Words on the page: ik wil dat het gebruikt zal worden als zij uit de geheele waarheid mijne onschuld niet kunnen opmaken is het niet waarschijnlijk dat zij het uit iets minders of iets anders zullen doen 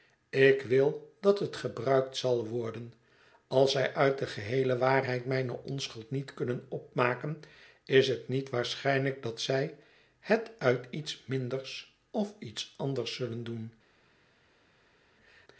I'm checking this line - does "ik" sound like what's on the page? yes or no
yes